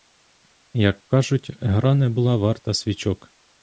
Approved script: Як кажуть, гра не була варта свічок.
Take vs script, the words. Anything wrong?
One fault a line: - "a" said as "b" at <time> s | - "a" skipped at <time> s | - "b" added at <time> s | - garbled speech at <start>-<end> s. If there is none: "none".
none